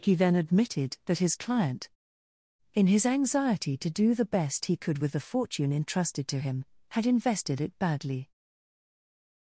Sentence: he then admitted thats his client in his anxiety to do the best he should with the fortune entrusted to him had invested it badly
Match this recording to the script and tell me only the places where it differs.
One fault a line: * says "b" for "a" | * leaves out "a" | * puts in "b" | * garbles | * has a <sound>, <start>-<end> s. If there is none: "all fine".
* says "that" for "thats"
* says "could" for "should"